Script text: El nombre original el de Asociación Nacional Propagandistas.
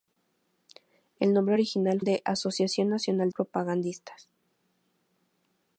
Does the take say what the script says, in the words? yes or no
yes